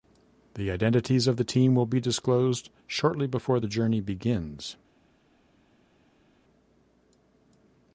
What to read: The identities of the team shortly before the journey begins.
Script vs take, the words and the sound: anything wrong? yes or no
yes